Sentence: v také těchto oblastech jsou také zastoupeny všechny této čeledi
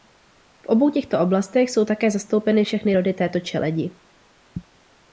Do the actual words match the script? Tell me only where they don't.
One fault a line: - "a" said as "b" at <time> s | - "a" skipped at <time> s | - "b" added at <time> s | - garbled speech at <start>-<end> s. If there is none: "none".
- "také" said as "obou" at 0.7 s
- "rody" added at 2.9 s